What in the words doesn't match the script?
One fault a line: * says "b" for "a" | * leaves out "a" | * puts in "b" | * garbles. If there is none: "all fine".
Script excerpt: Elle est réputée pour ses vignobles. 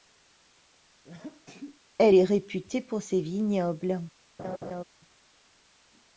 all fine